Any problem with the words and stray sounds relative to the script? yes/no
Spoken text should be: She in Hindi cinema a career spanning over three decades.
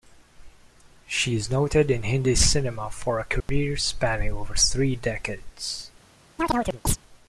yes